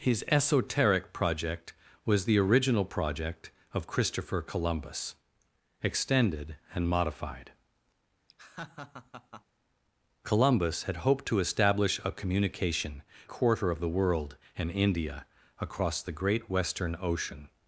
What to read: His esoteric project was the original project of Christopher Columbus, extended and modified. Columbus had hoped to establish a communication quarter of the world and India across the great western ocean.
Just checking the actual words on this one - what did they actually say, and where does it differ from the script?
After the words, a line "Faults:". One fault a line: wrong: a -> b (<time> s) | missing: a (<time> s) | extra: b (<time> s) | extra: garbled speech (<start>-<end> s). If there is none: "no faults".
His esoteric project was the original project of Christopher Columbus, extended and modified. Columbus had hoped to establish a communication quarter of the world and India across the great western ocean.
Faults:
no faults